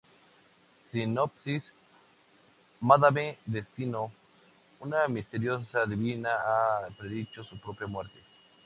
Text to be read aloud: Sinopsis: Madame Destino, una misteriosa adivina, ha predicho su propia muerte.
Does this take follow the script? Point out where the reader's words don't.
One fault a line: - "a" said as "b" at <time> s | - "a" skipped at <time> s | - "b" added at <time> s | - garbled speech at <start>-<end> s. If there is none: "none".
none